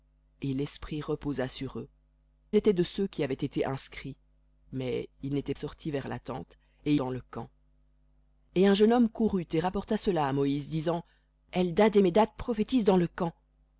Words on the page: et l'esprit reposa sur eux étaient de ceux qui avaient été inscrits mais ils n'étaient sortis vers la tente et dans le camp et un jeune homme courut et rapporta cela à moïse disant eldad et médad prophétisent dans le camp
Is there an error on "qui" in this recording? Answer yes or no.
no